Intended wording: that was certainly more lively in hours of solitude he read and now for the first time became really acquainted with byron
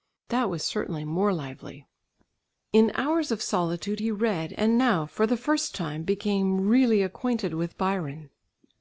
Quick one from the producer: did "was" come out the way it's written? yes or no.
yes